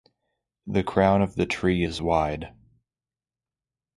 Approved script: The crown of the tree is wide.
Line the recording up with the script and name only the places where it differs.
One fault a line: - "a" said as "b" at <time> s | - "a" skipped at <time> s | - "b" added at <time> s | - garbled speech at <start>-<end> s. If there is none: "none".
none